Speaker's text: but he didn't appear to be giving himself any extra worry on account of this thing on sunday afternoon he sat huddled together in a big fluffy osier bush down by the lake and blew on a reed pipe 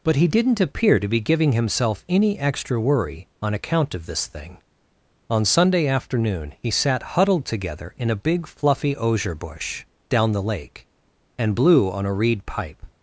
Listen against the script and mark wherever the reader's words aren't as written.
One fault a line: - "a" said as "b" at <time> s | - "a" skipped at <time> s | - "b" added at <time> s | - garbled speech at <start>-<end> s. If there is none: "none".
- "by" skipped at 10.3 s